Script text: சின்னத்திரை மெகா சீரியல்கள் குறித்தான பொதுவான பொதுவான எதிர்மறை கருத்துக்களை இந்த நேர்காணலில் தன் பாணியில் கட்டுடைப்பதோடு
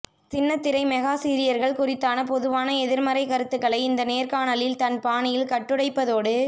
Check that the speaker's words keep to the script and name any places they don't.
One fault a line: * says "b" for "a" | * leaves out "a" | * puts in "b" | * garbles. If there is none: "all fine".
* leaves out "பொதுவான"